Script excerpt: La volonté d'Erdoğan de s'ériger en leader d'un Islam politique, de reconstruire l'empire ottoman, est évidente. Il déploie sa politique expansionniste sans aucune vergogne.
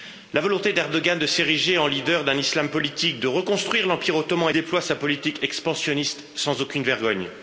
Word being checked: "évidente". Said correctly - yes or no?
no